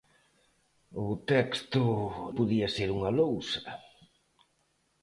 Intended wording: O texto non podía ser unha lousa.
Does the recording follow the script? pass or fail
fail